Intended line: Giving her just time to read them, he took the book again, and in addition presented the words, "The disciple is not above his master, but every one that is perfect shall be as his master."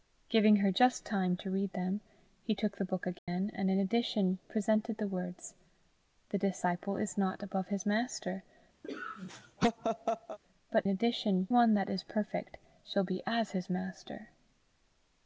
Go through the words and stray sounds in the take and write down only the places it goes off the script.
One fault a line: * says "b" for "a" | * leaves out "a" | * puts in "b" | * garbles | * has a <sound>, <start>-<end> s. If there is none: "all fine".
* has a dropout, 3.2-3.3 s
* has a laugh, 8.8-10.4 s
* says "addition" for "every"